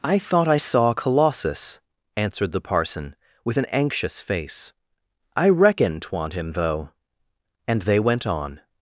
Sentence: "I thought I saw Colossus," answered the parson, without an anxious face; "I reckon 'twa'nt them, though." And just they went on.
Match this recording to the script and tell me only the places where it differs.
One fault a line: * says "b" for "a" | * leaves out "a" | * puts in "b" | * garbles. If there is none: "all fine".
* says "with" for "without"
* says "him" for "them"
* leaves out "just"